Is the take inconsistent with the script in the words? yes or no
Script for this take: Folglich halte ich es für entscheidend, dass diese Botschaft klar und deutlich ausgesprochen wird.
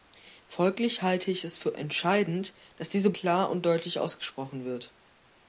yes